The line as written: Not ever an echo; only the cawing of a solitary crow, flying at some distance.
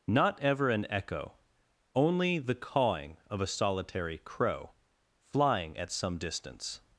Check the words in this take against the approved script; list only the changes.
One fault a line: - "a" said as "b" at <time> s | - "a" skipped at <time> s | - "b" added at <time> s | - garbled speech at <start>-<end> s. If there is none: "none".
none